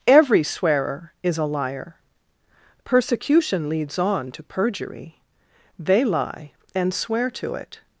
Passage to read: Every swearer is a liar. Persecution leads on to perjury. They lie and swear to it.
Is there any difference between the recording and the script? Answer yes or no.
no